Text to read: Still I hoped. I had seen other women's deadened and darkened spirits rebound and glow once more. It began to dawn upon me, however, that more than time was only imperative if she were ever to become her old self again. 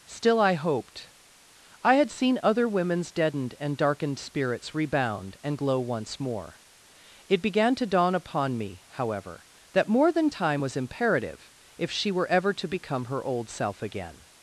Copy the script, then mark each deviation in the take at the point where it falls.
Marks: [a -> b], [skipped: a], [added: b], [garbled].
Still I hoped. I had seen other women's deadened and darkened spirits rebound and glow once more. It began to dawn upon me, however, that more than time was [skipped: only] imperative if she were ever to become her old self again.